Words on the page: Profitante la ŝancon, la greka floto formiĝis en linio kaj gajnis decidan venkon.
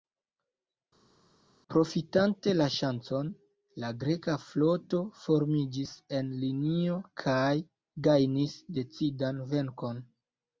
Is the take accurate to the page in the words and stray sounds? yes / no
yes